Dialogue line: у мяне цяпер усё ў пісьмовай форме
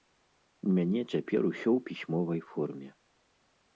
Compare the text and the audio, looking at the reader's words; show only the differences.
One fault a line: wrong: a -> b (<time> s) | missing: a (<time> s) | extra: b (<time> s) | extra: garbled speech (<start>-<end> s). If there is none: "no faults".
no faults